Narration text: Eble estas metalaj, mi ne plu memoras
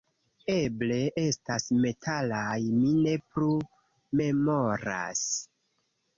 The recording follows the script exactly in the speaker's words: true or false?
true